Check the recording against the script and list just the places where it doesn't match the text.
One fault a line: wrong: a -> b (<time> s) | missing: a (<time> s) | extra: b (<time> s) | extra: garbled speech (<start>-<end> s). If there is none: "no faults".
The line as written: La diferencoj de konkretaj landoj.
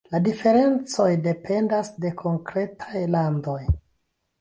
extra: dependas (1.3 s)